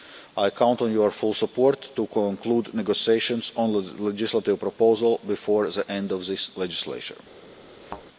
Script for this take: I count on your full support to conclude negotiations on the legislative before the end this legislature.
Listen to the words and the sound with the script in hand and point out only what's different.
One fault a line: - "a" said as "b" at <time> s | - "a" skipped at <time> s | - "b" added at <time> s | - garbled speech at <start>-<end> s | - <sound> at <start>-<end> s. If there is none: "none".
- "proposal" added at 4.6 s
- "of" added at 6.1 s
- thud at 7.8-8.1 s